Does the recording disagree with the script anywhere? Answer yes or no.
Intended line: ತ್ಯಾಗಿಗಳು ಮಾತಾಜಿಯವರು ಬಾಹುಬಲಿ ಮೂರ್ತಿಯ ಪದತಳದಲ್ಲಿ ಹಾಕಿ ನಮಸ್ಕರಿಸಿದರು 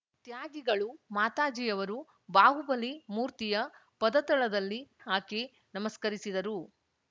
no